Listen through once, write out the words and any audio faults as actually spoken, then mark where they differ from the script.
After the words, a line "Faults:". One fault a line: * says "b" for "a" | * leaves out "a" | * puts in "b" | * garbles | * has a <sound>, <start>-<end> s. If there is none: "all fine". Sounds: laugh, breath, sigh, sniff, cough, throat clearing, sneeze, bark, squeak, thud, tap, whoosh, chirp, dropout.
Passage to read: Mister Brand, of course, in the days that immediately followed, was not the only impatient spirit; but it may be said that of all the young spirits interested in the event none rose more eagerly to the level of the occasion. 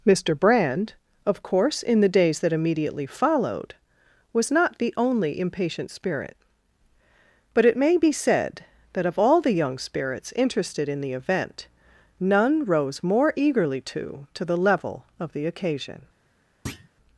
Mister Brand, of course, in the days that immediately followed, was not the only impatient spirit; but it may be said that of all the young spirits interested in the event none rose more eagerly to to the level of the occasion.
Faults:
* puts in "to"
* has a thud, 16.7-16.9 s